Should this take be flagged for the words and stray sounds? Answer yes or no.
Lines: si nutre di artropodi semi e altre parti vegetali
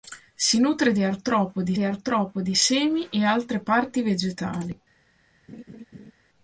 yes